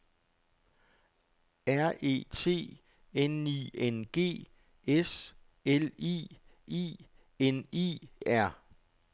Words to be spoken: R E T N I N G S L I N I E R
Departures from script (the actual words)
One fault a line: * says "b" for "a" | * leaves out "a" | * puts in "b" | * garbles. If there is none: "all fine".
* puts in "I"
* leaves out "E"